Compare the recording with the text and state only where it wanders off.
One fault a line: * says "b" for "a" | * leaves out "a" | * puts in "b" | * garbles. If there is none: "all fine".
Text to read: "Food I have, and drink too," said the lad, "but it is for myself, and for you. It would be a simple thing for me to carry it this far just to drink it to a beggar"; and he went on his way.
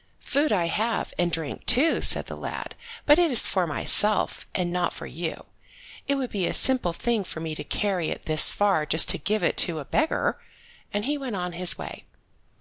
* puts in "not"
* says "give" for "drink"